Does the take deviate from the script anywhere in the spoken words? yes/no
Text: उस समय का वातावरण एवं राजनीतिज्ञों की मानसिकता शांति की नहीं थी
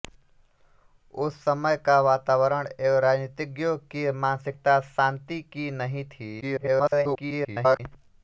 yes